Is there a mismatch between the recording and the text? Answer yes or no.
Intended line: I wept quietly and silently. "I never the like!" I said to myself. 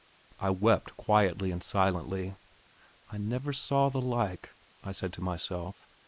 yes